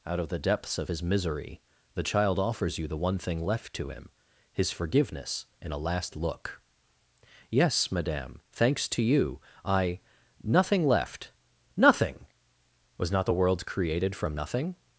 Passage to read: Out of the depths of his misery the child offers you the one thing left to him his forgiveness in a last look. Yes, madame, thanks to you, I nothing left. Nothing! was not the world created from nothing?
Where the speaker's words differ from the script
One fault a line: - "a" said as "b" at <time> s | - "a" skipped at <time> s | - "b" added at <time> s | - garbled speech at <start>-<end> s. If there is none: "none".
none